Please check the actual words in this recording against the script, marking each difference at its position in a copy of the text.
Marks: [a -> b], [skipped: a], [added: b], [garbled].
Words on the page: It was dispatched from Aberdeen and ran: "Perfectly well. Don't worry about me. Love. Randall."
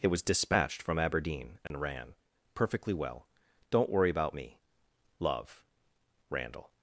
It was dispatched from Aberdeen and ran: "Perfectly well. Don't worry about me. Love. Randall."